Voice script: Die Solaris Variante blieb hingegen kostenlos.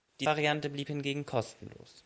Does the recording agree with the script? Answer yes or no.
no